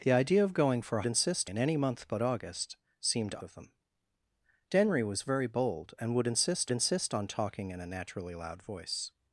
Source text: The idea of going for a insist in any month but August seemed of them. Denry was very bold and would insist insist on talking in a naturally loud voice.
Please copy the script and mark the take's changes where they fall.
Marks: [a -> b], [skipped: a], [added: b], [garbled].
The idea of going for a insist in any month but August seemed of them. Denry was very bold and would insist insist on talking in a naturally loud voice.